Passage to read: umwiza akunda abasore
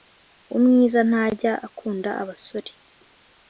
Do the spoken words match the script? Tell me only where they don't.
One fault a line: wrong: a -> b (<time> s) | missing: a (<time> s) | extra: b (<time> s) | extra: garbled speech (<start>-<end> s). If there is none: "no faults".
extra: ntajya (1.1 s)